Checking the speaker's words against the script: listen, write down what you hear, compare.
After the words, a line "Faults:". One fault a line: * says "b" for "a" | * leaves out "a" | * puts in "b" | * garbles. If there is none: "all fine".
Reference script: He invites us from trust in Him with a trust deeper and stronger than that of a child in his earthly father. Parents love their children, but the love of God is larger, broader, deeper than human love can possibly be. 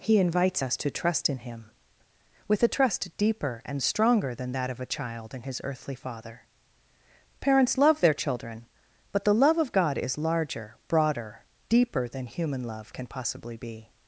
He invites us to trust in Him with a trust deeper and stronger than that of a child in his earthly father. Parents love their children, but the love of God is larger, broader, deeper than human love can possibly be.
Faults:
* says "to" for "from"